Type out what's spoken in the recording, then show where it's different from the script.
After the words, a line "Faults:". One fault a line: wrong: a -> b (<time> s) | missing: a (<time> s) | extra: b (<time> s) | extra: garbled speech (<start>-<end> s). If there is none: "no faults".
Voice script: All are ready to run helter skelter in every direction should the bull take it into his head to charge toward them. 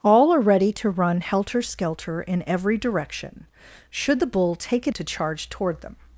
All are ready to run helter skelter in every direction should the bull take it to charge toward them.
Faults:
missing: into his head (5.0 s)